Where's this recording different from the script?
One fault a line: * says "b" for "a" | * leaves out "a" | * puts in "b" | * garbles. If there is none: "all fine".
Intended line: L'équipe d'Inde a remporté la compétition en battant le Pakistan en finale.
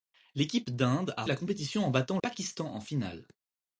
* leaves out "remporté"
* leaves out "le"